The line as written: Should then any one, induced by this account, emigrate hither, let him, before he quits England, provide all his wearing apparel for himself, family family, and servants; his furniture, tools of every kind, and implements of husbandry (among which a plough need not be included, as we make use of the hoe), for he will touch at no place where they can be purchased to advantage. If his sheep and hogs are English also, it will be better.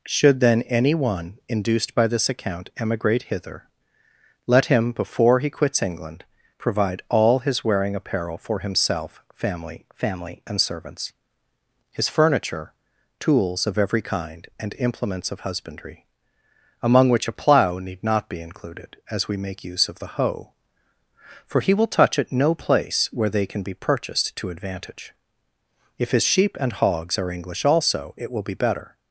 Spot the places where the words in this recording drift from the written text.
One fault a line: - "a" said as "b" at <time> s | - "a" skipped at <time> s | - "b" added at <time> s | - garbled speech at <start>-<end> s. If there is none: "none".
none